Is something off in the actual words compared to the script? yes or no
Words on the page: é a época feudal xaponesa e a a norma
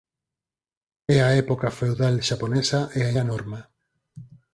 no